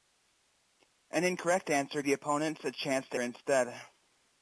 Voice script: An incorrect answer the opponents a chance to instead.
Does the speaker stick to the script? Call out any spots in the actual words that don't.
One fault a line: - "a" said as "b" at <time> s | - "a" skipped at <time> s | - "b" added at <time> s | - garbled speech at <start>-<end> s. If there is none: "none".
none